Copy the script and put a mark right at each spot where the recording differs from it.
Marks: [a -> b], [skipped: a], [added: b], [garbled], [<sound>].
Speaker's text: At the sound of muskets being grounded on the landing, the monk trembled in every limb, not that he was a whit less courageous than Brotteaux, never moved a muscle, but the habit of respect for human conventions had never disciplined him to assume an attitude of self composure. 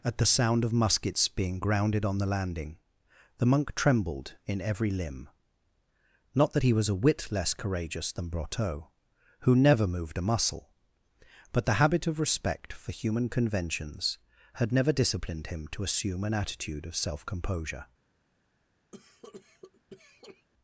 At the sound of muskets being grounded on the landing, the monk trembled in every limb, not that he was a whit less courageous than Brotteaux, [added: who] never moved a muscle, but the habit of respect for human conventions had never disciplined him to assume an attitude of self composure. [cough]